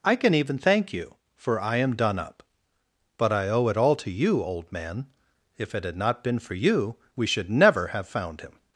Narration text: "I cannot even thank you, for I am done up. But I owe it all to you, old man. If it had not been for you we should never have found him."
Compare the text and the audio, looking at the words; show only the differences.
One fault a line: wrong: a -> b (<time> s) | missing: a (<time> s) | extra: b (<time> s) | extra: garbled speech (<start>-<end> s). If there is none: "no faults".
wrong: cannot -> can (0.1 s)